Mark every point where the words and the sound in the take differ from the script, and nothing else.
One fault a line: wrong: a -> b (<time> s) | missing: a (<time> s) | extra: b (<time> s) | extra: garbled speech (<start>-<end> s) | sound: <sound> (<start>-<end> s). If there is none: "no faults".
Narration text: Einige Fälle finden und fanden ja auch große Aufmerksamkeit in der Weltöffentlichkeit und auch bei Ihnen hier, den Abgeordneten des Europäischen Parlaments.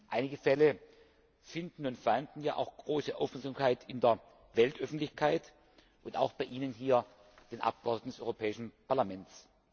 no faults